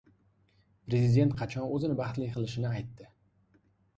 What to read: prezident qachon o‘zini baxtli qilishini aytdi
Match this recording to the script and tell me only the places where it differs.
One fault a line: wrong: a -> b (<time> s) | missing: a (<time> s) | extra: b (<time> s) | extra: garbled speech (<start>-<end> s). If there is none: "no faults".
no faults